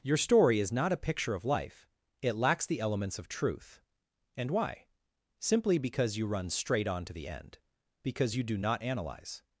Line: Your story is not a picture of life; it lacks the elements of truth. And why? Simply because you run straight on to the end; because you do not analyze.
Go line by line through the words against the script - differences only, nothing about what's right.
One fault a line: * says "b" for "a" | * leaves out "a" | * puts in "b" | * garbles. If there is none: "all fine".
all fine